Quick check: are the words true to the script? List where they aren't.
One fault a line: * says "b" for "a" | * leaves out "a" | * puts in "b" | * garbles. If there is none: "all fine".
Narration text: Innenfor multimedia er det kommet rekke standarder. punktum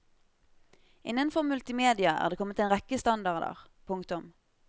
* puts in "en"